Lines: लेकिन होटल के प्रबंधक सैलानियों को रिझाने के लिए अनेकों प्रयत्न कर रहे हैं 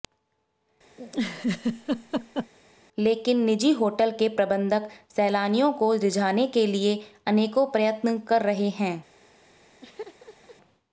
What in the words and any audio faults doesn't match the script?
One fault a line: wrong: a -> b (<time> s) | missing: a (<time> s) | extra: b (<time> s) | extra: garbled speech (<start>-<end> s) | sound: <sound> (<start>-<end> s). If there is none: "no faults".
sound: laugh (1.0-2.5 s)
extra: निजी (3.5 s)
sound: laugh (9.8-10.6 s)